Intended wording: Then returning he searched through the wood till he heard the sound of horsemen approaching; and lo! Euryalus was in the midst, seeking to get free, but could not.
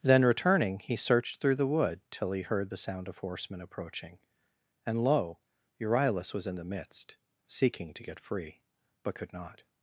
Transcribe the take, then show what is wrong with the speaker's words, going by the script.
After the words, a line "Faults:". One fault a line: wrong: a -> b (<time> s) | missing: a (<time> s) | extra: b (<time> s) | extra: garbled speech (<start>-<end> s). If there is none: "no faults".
Then returning he searched through the wood till he heard the sound of horsemen approaching; and lo! Euryalus was in the midst, seeking to get free, but could not.
Faults:
no faults